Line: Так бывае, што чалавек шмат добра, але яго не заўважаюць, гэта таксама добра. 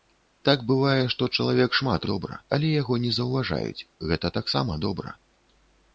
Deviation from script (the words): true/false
false